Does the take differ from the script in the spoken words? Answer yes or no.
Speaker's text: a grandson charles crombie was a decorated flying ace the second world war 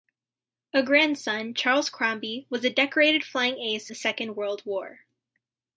no